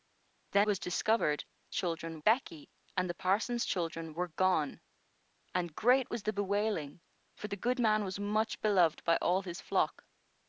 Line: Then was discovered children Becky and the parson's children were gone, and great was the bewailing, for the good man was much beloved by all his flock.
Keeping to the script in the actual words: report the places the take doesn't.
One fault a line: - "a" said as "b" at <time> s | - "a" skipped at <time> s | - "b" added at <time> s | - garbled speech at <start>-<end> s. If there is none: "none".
none